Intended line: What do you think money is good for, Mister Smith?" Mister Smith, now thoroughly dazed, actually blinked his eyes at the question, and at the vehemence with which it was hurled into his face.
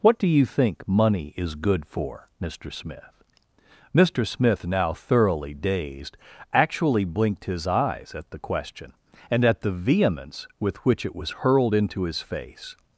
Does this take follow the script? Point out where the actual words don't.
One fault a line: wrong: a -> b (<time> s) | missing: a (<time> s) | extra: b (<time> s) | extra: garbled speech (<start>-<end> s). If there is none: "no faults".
no faults